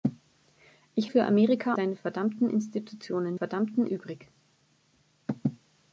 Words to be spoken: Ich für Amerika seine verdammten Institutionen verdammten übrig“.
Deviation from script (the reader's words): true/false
false